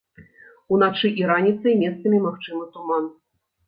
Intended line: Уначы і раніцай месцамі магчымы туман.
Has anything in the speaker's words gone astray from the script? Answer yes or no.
no